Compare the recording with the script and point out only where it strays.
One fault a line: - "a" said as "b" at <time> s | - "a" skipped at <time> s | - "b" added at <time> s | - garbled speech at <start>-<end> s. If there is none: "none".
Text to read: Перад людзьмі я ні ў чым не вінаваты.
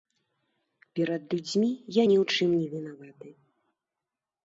none